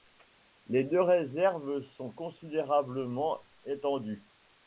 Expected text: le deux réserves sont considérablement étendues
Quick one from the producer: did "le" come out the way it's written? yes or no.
no